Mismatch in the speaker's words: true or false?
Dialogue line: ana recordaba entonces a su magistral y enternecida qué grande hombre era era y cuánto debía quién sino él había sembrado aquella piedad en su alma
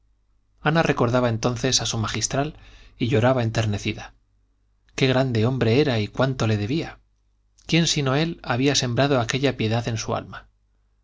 true